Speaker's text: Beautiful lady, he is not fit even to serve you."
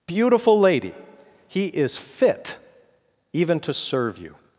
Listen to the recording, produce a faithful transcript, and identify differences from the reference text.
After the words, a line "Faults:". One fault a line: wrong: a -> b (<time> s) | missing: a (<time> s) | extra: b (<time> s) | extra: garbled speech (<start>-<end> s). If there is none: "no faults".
Beautiful lady, he is fit even to serve you."
Faults:
missing: not (2.0 s)